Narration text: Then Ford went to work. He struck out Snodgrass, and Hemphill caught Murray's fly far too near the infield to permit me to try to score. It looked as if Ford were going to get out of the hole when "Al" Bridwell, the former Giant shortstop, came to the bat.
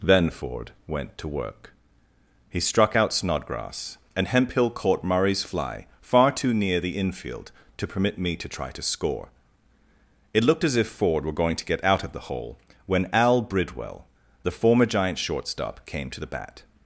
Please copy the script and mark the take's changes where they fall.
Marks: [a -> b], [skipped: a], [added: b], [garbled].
Then Ford went to work. He struck out Snodgrass, and Hemphill caught Murray's fly far too near the infield to permit me to try to score. It looked as if Ford were going to get out of the hole when "Al" Bridwell, the former Giant shortstop, came to the bat.